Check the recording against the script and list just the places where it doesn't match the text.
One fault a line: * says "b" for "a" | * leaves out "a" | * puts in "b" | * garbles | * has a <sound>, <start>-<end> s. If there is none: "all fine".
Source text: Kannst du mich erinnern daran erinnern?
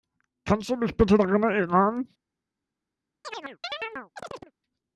* says "bitte" for "erinnern"
* has a chirp, 3.2-4.5 s